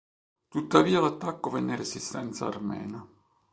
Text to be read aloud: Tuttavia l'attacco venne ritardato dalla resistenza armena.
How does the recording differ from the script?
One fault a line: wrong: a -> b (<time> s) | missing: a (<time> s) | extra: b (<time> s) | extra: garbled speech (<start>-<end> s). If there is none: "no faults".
missing: ritardato dalla (1.8 s)